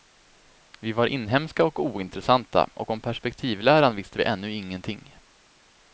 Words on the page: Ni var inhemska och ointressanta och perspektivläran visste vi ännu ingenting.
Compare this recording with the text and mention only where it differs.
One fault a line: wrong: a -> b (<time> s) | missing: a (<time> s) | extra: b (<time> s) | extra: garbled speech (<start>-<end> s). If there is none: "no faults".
wrong: Ni -> Vi (0.8 s)
extra: om (2.9 s)